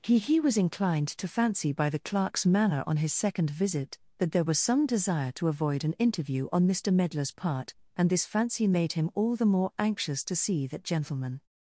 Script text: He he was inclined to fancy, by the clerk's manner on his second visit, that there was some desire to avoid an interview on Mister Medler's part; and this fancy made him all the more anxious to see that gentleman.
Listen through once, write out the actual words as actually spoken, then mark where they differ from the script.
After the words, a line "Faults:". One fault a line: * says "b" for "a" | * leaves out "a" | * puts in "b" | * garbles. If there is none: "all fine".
He he was inclined to fancy, by the clerk's manner on his second visit, that there was some desire to avoid an interview on Mister Medler's part; and this fancy made him all the more anxious to see that gentleman.
Faults:
all fine